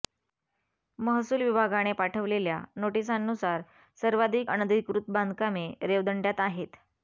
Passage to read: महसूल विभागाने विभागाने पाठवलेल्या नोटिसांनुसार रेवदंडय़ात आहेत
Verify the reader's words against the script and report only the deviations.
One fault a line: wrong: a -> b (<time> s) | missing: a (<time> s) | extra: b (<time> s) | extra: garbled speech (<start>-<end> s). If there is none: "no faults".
missing: विभागाने (1.9 s)
extra: सर्वाधिक अनधिकृत बांधकामे (4.0 s)